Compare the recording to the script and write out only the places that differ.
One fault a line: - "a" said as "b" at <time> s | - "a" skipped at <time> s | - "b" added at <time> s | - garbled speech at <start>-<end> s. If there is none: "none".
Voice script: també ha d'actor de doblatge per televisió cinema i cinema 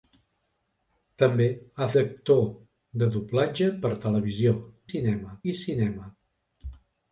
none